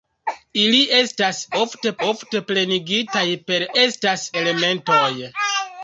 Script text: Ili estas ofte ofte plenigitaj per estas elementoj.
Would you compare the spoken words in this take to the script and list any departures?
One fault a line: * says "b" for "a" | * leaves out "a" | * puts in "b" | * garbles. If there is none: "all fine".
all fine